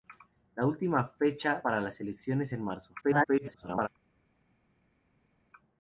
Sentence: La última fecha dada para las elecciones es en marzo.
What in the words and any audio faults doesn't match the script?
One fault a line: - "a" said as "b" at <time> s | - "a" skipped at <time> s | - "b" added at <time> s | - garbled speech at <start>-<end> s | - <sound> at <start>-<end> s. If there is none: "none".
- "dada" skipped at 1.6 s
- "es" skipped at 2.5 s
- garbled speech at 3.0-3.9 s